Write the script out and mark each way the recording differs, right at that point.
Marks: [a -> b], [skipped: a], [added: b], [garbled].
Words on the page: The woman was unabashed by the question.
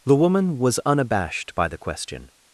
The woman was unabashed by the question.